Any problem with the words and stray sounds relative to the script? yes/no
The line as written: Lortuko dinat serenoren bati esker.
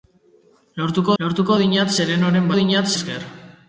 yes